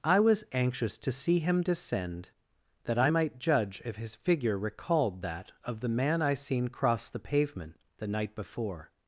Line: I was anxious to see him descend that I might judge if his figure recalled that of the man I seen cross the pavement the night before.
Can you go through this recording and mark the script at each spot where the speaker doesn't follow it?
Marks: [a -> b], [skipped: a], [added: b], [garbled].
I was anxious to see him descend that I might judge if his figure recalled that of the man I seen cross the pavement the night before.